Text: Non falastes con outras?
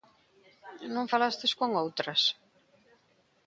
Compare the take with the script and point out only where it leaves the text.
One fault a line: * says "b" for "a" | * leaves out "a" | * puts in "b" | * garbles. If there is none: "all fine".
all fine